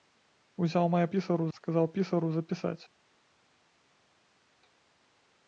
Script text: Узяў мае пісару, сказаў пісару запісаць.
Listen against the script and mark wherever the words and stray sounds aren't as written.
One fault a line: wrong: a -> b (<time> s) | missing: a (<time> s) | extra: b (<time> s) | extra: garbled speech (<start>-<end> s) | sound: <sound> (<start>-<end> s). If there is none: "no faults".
no faults